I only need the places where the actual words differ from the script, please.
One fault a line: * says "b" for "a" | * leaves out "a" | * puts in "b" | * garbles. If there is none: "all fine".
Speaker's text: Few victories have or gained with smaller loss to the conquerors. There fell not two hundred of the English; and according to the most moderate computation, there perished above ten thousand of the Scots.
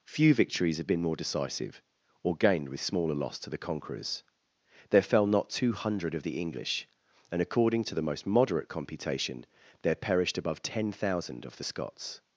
* puts in "been more decisive"